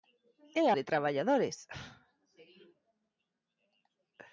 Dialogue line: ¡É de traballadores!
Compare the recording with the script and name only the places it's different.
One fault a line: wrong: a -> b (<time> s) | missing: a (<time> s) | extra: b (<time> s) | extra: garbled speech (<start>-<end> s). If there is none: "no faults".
no faults